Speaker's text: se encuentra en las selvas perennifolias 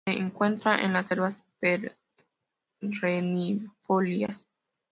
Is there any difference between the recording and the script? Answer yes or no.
no